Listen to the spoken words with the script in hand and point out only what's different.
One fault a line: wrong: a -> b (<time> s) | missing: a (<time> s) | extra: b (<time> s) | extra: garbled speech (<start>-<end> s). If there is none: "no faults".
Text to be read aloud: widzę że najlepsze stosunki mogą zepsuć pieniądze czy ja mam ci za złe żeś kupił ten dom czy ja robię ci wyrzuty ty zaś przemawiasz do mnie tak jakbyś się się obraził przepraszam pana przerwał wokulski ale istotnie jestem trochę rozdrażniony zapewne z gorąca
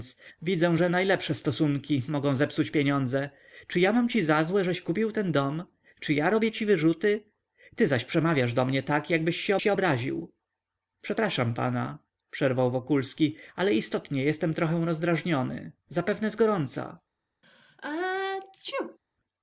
no faults